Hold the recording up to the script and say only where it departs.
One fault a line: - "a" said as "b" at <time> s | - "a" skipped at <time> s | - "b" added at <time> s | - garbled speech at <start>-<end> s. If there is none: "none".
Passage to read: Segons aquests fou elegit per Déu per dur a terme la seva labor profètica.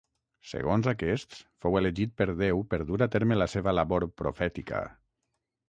none